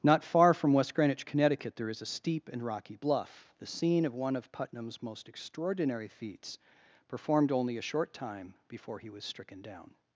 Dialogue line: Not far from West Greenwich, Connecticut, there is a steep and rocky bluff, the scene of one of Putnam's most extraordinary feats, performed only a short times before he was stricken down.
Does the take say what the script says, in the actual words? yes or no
no